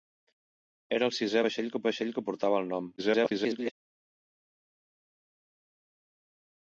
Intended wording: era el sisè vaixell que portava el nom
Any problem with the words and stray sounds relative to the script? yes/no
yes